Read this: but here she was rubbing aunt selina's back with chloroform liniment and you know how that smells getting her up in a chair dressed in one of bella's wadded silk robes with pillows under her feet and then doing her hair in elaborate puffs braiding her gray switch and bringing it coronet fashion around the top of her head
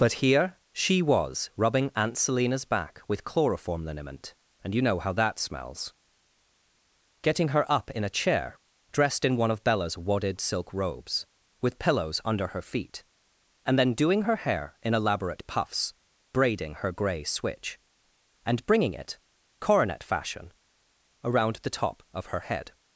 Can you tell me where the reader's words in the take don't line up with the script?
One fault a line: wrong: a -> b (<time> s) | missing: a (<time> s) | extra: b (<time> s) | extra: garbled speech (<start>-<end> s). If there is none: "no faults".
no faults